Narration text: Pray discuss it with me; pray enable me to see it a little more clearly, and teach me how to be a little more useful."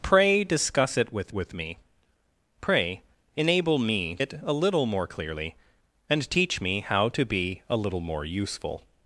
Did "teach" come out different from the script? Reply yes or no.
no